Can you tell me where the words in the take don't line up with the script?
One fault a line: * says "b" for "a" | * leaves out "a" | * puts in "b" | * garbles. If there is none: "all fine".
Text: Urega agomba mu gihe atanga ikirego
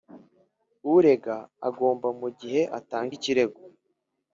all fine